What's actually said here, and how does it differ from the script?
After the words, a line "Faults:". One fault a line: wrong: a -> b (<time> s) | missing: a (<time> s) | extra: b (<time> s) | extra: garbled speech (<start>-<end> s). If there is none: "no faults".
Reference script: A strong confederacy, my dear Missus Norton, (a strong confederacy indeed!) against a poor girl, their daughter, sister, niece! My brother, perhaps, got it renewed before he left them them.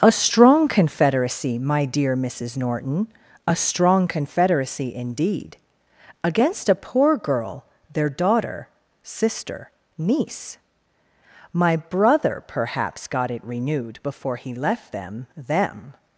A strong confederacy, my dear Missus Norton, (a strong confederacy indeed!) against a poor girl, their daughter, sister, niece! My brother, perhaps, got it renewed before he left them them.
Faults:
no faults